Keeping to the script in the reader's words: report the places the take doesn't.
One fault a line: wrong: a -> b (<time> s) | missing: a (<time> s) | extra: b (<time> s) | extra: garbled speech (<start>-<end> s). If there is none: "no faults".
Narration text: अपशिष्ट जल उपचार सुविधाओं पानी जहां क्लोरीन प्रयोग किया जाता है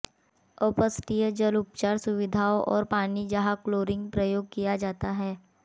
extra: और (2.6 s)